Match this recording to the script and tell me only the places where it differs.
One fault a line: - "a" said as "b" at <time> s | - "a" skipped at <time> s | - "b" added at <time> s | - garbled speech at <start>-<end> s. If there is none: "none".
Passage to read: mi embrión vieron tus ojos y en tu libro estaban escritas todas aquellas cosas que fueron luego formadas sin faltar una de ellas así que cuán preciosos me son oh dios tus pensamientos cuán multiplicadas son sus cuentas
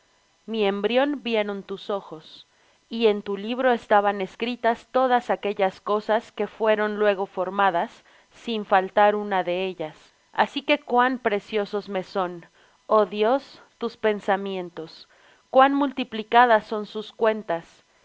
none